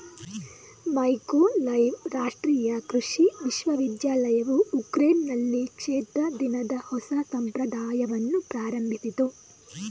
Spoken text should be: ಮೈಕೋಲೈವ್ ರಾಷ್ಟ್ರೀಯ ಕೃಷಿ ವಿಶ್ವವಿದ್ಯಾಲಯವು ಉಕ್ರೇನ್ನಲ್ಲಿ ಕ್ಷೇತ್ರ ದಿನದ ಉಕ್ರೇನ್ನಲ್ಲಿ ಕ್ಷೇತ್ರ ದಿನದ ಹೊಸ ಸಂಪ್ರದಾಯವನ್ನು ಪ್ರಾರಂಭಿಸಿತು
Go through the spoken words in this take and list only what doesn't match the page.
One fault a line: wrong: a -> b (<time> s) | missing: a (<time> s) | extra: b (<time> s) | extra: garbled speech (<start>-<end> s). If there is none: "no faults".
missing: ಉಕ್ರೇನ್ನಲ್ಲಿ ಕ್ಷೇತ್ರ ದಿನದ (6.8 s)